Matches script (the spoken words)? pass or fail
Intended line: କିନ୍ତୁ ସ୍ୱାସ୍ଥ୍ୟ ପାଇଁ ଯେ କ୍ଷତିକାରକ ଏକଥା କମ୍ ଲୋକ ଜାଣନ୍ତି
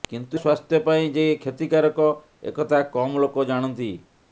pass